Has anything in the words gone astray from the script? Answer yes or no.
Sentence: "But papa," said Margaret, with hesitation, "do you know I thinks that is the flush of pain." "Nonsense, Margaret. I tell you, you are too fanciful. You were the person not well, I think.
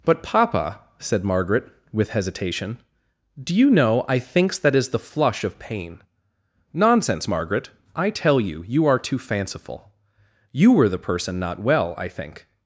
no